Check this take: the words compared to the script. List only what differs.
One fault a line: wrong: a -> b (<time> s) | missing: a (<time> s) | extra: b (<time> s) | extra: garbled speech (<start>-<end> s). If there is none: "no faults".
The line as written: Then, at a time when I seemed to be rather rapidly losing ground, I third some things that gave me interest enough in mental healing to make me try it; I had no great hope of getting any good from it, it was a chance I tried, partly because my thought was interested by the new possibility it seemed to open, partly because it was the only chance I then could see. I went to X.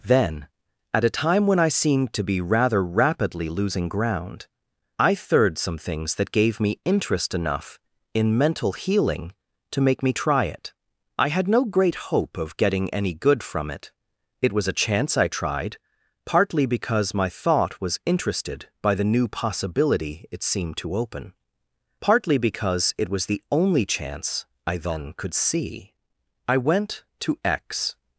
no faults